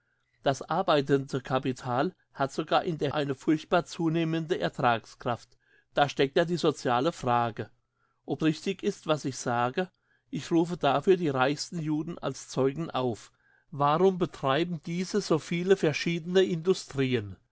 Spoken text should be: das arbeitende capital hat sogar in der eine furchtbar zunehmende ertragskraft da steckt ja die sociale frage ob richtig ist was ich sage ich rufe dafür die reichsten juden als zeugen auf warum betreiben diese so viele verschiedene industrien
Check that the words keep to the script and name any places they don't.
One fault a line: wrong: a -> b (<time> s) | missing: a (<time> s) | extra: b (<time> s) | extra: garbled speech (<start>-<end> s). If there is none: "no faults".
no faults